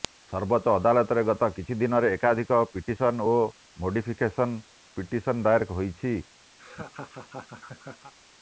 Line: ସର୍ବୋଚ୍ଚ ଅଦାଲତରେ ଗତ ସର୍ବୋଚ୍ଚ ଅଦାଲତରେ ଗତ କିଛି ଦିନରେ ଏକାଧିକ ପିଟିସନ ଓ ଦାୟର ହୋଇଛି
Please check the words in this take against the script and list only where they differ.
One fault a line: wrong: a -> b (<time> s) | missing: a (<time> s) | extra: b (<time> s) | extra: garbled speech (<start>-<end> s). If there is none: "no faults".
missing: ସର୍ବୋଚ୍ଚ ଅଦାଲତରେ ଗତ (1.5 s)
extra: ମୋଡିଫିକେସନ ପିଟିସନ (3.8 s)